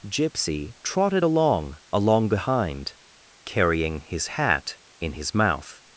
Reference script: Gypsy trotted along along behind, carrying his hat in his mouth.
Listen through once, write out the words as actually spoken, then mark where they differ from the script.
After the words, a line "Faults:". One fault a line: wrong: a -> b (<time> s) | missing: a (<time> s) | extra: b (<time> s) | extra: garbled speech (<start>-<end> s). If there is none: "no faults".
Gypsy trotted along along behind, carrying his hat in his mouth.
Faults:
no faults